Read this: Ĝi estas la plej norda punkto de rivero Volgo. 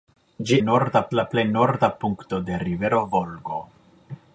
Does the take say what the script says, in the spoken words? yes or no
no